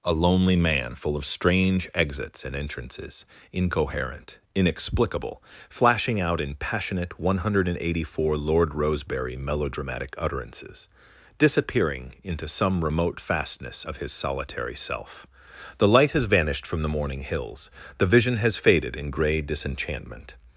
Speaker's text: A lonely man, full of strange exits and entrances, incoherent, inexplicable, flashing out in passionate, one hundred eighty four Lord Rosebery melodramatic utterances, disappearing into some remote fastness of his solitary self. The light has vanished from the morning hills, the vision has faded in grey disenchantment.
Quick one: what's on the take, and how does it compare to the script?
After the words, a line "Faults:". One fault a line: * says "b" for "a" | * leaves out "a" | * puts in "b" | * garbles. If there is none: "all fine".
A lonely man, full of strange exits and entrances, incoherent, inexplicable, flashing out in passionate, one hundred eighty four Lord Rosebery melodramatic utterances, disappearing into some remote fastness of his solitary self. The light has vanished from the morning hills, the vision has faded in grey disenchantment.
Faults:
all fine